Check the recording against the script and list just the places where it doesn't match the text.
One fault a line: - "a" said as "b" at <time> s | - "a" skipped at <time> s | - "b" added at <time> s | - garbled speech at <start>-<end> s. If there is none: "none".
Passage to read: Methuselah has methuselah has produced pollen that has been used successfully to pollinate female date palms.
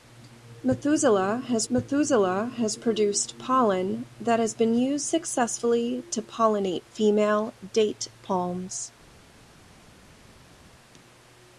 none